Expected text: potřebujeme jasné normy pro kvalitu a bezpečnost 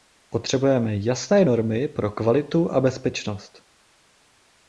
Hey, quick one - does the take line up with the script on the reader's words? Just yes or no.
yes